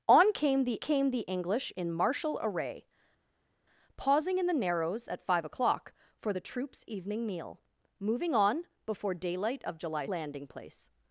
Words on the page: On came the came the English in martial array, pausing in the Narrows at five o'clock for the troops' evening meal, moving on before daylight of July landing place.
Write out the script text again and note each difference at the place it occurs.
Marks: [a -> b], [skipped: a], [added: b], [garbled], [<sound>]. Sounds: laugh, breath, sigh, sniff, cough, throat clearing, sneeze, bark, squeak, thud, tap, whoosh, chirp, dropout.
On came the came the English in martial array, pausing in the Narrows at five o'clock for the troops' evening meal, moving on before daylight of July landing place.